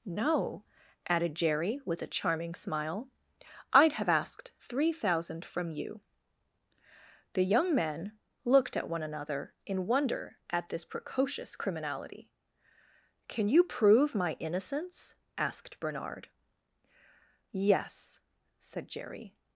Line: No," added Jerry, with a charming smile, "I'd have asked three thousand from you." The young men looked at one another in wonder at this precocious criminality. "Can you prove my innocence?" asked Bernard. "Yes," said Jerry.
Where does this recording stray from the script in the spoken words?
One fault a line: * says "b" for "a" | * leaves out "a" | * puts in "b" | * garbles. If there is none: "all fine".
all fine